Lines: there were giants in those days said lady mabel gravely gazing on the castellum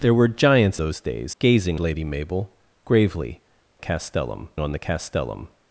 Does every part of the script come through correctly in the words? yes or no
no